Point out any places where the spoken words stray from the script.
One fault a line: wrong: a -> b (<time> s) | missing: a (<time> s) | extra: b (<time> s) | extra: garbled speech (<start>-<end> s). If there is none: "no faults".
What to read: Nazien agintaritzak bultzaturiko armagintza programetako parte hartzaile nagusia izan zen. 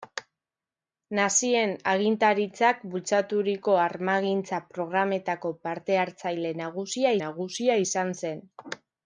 extra: nagusia (7.3 s)